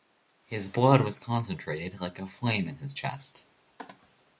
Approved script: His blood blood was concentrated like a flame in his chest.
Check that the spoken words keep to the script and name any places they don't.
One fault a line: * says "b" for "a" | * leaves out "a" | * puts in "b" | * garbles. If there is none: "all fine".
* leaves out "blood"